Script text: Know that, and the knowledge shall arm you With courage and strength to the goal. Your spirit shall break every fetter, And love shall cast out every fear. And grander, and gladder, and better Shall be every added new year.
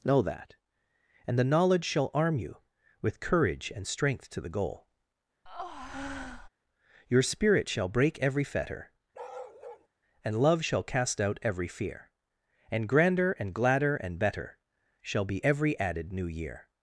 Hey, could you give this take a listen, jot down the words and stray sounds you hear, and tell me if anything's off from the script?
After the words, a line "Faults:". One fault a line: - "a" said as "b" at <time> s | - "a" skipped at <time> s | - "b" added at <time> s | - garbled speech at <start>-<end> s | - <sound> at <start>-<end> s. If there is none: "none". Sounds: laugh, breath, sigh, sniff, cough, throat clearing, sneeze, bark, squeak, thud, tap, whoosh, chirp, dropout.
Know that, and the knowledge shall arm you With courage and strength to the goal. Your spirit shall break every fetter, And love shall cast out every fear. And grander, and gladder, and better Shall be every added new year.
Faults:
- breath at 5.5-6.5 s
- bark at 9.1-9.9 s